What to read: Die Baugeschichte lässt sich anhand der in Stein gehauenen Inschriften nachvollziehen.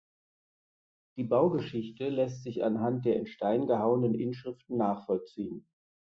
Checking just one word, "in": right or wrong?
right